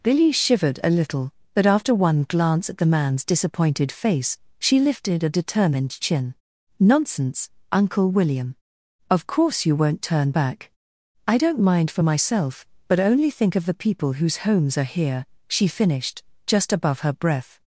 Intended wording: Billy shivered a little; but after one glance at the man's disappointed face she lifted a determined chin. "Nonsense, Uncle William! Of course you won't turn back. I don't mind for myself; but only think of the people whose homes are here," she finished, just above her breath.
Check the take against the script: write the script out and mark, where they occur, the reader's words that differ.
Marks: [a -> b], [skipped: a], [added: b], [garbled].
Billy shivered a little; but after one glance at the man's disappointed face she lifted a determined chin. "Nonsense, Uncle William! Of course you won't turn back. I don't mind for myself; but only think of the people whose homes are here," she finished, just above her breath.